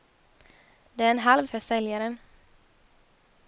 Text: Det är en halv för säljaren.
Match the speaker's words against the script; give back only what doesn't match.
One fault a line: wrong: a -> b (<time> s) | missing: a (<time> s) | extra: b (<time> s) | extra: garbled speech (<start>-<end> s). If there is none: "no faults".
no faults